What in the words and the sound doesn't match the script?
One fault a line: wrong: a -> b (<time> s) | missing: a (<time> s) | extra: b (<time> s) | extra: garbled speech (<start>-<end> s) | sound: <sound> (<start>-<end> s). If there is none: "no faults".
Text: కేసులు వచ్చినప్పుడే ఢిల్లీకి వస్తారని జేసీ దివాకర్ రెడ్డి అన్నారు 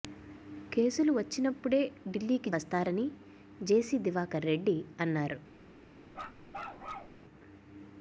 sound: bark (6.1-7.2 s)